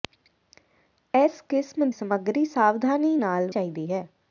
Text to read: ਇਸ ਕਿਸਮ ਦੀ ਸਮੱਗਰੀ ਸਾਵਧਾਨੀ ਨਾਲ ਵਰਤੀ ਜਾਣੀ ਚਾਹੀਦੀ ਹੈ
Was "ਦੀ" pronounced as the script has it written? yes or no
no